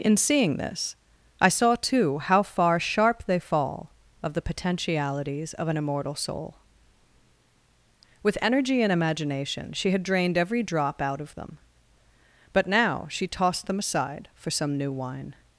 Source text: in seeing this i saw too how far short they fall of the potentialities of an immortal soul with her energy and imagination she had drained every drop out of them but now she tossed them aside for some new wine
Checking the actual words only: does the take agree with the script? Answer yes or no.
no